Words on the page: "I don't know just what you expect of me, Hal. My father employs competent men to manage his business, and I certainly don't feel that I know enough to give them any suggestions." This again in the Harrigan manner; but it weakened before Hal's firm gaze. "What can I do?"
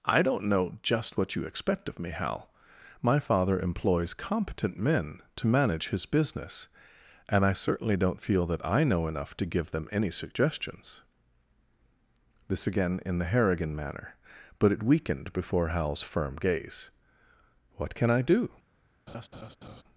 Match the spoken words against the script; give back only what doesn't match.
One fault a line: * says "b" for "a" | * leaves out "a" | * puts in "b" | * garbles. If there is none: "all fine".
all fine